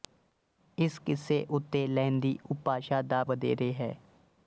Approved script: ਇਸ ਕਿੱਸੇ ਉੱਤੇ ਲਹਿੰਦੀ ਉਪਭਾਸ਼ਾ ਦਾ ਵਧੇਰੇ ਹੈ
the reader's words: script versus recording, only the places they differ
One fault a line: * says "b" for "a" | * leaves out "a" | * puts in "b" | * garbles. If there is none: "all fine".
all fine